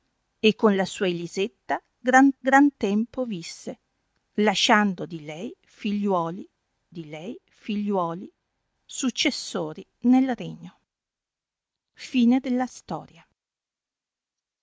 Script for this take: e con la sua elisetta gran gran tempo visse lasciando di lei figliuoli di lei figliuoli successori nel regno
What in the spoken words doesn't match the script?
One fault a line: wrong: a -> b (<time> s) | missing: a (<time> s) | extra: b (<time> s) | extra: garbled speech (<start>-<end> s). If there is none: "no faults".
no faults